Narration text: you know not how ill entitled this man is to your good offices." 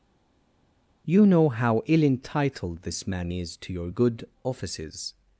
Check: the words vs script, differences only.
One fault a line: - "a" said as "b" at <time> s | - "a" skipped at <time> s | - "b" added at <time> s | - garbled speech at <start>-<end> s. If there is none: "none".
- "not" skipped at 1.5 s